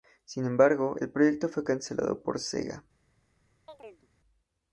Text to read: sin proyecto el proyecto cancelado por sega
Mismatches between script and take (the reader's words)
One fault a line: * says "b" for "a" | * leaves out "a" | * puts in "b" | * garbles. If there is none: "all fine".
* says "embargo" for "proyecto"
* puts in "fue"